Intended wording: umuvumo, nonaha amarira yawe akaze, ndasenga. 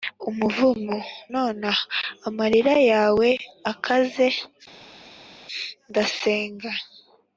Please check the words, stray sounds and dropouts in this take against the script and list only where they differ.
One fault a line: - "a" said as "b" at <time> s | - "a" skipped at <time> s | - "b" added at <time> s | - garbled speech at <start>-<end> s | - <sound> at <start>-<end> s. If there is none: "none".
none